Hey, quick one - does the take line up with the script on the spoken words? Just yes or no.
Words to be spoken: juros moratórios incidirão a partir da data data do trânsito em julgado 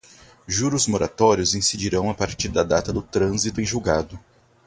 no